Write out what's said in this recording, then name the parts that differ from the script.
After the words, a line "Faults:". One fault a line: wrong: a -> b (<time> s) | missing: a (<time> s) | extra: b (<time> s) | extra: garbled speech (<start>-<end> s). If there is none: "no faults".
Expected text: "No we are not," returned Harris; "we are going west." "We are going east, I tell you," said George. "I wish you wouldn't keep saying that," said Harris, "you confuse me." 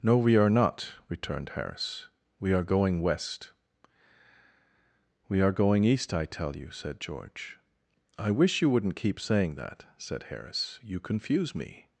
"No we are not," returned Harris; "we are going west." "We are going east, I tell you," said George. "I wish you wouldn't keep saying that," said Harris, "you confuse me."
Faults:
no faults